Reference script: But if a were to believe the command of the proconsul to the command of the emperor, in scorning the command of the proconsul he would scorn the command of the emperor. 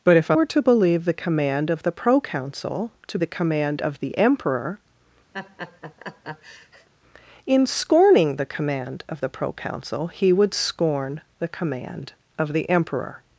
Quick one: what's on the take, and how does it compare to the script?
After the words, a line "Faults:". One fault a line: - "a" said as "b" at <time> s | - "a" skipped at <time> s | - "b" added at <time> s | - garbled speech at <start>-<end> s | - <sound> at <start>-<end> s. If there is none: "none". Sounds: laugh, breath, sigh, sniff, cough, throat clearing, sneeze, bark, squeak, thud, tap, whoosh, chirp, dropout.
But if a were to believe the command of the proconsul to the command of the emperor, in scorning the command of the proconsul he would scorn the command of the emperor.
Faults:
- laugh at 5.3-6.9 s